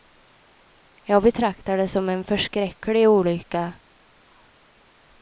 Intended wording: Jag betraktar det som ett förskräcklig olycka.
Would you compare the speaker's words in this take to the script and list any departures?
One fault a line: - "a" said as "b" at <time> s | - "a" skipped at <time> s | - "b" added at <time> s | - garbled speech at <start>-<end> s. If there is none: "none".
- "ett" said as "en" at 2.1 s